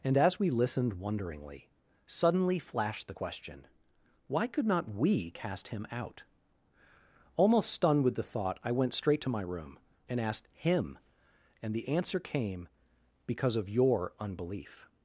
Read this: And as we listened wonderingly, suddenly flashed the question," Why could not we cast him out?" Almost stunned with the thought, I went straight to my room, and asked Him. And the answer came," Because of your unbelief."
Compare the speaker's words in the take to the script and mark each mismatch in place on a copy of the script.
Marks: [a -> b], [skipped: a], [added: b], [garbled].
And as we listened wonderingly, suddenly flashed the question," Why could not we cast him out?" Almost stunned with the thought, I went straight to my room, and asked Him. And the answer came," Because of your unbelief."